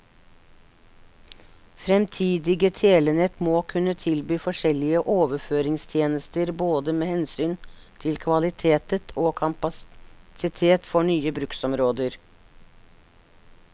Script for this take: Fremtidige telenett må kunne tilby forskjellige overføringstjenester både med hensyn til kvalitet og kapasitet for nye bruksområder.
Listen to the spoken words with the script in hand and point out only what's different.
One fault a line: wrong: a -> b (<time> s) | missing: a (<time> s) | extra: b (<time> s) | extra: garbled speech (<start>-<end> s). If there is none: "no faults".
no faults